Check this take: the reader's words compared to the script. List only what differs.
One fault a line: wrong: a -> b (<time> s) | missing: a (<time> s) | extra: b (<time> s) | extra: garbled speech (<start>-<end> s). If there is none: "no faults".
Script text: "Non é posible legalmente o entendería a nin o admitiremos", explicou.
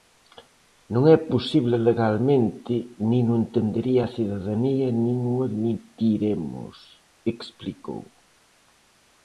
extra: nin (3.1 s)
extra: cidadanía (4.1 s)